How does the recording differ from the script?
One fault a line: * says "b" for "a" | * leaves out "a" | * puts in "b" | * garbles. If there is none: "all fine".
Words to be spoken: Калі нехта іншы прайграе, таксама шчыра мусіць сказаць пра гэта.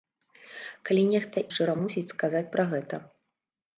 * leaves out "іншы прайграе таксама"